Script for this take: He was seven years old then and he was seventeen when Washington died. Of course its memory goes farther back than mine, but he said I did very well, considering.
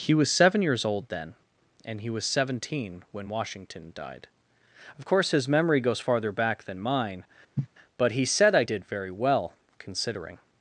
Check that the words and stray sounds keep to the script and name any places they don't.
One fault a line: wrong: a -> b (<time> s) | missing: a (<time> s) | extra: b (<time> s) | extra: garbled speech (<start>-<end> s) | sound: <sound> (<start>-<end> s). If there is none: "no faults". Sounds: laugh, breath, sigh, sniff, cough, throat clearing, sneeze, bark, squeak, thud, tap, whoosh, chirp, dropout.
wrong: its -> his (5.3 s)
sound: cough (7.6-7.7 s)